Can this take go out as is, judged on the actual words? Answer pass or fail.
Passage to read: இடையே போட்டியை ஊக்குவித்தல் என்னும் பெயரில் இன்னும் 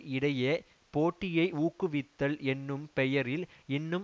pass